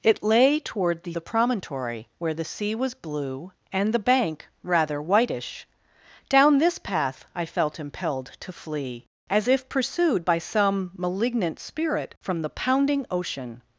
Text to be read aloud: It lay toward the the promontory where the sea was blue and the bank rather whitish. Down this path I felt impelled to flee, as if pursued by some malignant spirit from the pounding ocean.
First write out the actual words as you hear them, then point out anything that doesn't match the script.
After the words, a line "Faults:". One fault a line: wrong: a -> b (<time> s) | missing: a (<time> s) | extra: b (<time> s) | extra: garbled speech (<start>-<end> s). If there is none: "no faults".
It lay toward the the promontory where the sea was blue and the bank rather whitish. Down this path I felt impelled to flee, as if pursued by some malignant spirit from the pounding ocean.
Faults:
no faults